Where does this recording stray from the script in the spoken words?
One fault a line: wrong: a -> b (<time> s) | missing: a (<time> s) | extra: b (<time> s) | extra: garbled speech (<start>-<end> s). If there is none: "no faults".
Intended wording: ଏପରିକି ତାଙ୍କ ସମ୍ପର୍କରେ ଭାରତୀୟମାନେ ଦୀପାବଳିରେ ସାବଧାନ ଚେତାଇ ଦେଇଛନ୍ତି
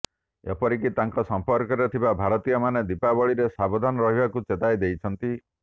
extra: ଥିବା (1.9 s)
extra: ରହିବାକୁ (4.1 s)